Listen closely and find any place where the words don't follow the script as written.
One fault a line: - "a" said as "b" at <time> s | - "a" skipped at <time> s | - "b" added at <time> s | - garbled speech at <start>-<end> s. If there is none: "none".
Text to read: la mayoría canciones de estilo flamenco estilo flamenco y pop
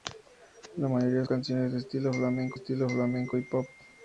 none